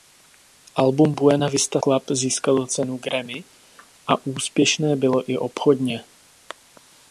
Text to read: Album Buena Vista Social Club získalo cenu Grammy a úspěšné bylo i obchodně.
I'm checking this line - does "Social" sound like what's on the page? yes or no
no